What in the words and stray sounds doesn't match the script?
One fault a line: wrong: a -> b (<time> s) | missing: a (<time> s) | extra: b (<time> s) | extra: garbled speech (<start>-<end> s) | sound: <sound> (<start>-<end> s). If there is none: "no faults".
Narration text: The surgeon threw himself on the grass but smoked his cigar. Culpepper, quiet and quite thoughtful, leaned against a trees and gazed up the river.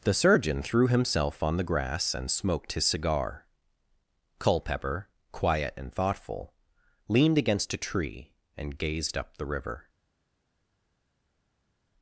wrong: but -> and (2.1 s)
missing: quite (5.9 s)
wrong: trees -> tree (7.8 s)